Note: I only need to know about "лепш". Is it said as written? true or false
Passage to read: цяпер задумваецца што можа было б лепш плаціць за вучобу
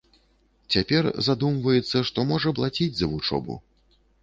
false